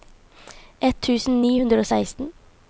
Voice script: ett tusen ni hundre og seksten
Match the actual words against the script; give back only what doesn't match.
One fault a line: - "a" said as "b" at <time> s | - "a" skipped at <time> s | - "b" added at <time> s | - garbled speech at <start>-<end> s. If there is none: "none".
none